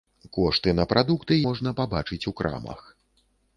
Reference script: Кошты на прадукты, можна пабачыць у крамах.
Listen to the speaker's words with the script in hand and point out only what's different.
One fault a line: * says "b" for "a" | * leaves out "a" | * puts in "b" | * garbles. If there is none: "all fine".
all fine